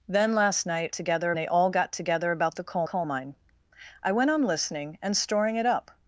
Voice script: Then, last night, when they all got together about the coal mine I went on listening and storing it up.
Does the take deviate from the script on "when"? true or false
true